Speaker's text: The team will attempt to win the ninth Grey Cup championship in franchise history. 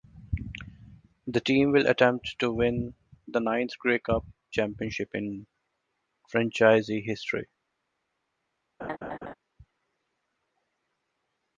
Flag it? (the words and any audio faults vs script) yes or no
yes